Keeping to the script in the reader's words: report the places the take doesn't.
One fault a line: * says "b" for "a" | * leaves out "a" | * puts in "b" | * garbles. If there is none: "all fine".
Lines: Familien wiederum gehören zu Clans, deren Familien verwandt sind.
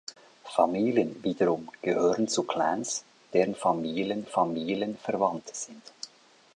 * puts in "Familien"